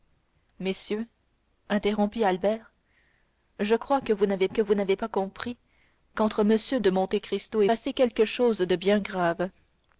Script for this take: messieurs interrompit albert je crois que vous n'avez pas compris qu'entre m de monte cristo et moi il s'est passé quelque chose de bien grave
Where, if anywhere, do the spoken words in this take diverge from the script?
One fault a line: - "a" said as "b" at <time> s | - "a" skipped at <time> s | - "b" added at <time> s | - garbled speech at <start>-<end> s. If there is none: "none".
- "que vous n'avez" added at 4.5 s
- "moi il s'est" skipped at 7.7 s